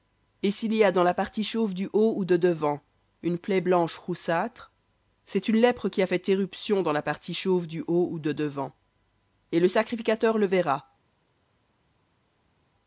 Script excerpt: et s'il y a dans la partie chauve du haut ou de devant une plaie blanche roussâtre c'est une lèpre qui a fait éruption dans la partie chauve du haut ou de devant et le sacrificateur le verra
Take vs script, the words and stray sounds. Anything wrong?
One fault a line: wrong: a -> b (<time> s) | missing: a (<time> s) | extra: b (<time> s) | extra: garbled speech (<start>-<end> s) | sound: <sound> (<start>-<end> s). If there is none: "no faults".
no faults